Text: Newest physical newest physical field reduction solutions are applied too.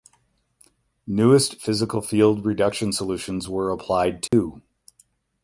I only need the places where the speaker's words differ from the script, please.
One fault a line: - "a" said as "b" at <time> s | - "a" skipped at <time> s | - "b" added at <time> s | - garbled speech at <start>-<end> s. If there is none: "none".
- "newest physical" skipped at 2.0 s
- "are" said as "were" at 3.5 s